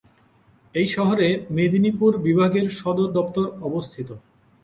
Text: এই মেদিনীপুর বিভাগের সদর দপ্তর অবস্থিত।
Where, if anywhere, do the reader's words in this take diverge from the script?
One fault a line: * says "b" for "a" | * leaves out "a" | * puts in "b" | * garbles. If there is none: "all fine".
* puts in "শহরে"